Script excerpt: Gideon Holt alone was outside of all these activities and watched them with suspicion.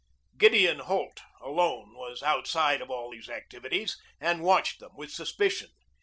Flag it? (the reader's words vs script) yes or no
no